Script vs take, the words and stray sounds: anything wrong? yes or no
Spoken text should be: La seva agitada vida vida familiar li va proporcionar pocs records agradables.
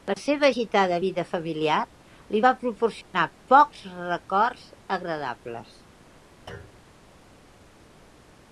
yes